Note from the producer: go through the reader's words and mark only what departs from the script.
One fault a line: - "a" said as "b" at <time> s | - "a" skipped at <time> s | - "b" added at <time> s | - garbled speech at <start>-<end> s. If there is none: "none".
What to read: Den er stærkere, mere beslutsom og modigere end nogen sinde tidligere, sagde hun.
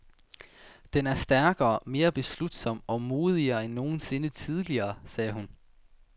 none